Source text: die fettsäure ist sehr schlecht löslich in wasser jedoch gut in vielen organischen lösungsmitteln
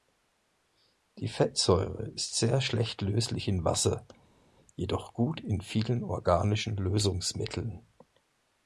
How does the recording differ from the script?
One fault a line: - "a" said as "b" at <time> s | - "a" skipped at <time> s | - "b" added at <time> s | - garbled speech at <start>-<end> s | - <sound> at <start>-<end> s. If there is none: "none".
none